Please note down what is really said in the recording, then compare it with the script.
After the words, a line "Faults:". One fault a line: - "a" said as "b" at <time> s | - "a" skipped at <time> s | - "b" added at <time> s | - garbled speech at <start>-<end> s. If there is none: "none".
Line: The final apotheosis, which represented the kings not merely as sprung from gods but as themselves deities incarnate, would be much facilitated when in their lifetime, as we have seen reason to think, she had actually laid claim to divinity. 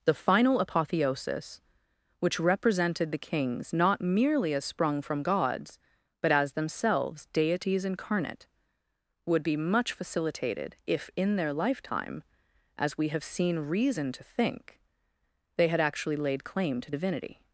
The final apotheosis, which represented the kings not merely as sprung from gods but as themselves deities incarnate, would be much facilitated if in their lifetime, as we have seen reason to think, they had actually laid claim to divinity.
Faults:
- "when" said as "if" at 10.8 s
- "she" said as "they" at 15.6 s